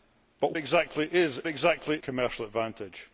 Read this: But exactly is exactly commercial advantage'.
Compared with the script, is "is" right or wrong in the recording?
right